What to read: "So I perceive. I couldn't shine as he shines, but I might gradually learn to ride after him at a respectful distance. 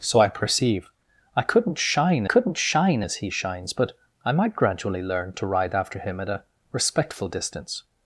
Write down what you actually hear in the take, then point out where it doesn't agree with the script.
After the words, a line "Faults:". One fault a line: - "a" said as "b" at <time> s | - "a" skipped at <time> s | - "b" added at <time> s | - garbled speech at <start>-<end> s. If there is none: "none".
"So I perceive. I couldn't shine couldn't shine as he shines, but I might gradually learn to ride after him at a respectful distance.
Faults:
- "couldn't shine" added at 2.2 s